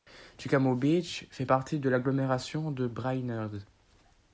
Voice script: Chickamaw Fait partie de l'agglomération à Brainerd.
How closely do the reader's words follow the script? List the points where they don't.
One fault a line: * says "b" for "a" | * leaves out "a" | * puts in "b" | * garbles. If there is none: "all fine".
* puts in "Beach"
* says "de" for "à"